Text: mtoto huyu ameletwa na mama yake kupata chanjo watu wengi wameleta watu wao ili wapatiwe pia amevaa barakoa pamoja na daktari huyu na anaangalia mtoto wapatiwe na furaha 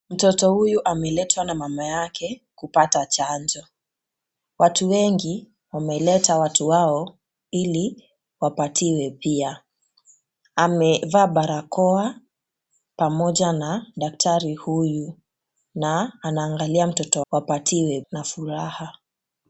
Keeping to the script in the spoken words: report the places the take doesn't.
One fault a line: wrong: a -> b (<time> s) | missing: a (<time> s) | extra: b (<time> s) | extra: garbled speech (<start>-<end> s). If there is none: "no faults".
no faults